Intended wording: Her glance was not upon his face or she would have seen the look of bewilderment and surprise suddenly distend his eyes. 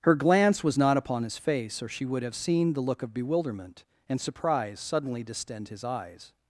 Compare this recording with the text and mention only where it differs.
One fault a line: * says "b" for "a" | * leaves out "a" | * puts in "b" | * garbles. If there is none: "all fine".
all fine